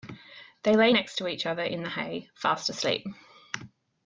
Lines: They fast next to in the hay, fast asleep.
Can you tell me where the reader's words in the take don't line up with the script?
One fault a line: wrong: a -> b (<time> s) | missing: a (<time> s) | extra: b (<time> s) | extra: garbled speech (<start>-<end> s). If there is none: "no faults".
wrong: fast -> lay (0.8 s)
extra: each other (1.3 s)